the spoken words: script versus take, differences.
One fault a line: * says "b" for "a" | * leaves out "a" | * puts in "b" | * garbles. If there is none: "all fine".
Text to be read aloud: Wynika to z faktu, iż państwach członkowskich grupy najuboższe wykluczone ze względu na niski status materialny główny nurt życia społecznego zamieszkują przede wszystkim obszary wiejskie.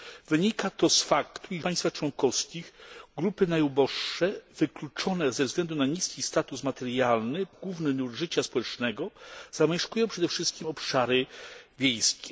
all fine